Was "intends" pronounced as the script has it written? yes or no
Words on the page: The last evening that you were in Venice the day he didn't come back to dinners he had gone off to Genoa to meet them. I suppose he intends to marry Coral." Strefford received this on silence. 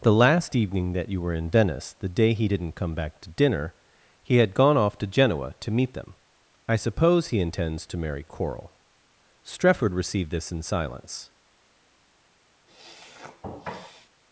yes